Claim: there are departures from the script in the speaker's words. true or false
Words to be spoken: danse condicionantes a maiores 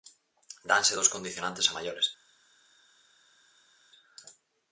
true